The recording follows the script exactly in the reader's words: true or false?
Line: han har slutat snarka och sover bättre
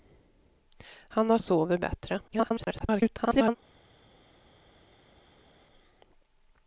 false